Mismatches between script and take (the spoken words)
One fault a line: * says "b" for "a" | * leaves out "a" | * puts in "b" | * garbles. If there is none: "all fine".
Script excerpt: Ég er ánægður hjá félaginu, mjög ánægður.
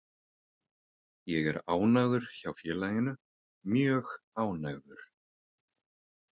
all fine